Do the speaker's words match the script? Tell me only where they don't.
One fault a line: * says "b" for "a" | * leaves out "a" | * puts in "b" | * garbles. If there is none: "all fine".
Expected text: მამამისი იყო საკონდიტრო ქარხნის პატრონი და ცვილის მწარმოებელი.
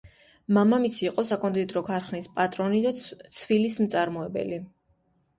all fine